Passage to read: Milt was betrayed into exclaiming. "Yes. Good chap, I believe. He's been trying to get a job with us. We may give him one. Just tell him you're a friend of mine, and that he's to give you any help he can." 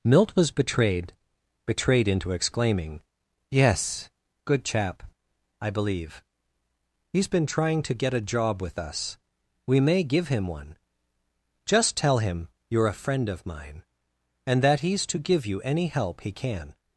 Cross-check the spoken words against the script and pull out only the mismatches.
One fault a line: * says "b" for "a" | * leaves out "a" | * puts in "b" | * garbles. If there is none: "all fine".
* puts in "betrayed"